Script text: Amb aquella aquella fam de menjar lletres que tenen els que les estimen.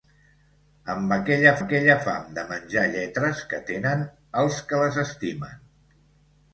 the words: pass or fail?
pass